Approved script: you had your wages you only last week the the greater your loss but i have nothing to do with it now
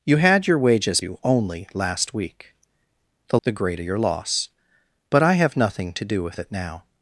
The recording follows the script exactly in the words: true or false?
true